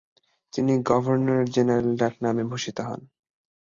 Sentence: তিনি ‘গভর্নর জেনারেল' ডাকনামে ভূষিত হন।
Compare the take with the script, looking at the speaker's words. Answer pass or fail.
pass